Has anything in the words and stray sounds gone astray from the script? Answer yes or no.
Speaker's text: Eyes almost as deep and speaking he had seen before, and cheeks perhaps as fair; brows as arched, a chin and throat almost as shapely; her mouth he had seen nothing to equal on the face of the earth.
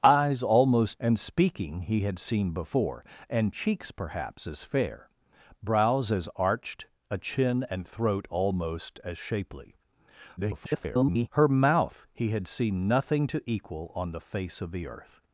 yes